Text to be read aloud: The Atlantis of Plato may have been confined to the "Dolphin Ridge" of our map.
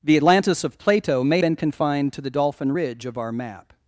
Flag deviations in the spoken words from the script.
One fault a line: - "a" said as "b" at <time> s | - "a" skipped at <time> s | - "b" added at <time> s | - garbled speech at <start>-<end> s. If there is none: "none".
- "have" skipped at 1.4 s